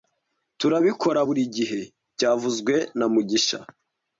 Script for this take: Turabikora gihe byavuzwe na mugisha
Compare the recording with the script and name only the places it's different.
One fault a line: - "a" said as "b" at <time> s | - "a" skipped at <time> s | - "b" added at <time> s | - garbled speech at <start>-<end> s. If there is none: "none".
- "buri" added at 1.2 s